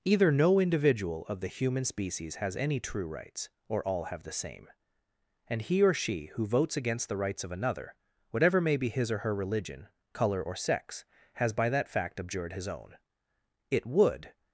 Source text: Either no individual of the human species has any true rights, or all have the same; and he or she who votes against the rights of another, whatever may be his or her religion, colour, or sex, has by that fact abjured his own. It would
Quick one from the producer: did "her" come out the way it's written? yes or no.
yes